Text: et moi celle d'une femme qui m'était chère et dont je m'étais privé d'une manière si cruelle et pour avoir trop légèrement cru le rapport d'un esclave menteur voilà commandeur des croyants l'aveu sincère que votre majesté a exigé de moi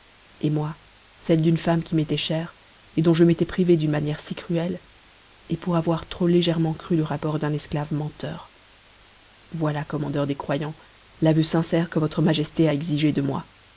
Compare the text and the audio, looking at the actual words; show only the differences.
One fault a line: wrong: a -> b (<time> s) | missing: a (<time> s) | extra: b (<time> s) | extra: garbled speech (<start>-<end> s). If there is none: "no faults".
no faults